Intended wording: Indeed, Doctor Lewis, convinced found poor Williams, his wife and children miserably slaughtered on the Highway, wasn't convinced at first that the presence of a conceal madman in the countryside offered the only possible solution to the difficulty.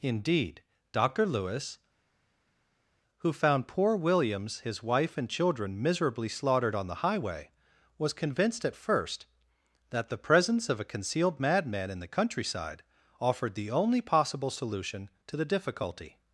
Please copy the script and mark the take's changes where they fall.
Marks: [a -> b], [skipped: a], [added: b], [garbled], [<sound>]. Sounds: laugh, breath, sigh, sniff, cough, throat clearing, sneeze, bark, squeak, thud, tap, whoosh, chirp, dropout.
Indeed, Doctor Lewis, [convinced -> who] found poor Williams, his wife and children miserably slaughtered on the Highway, [wasn't -> was] convinced at first that the presence of a [conceal -> concealed] madman in the countryside offered the only possible solution to the difficulty.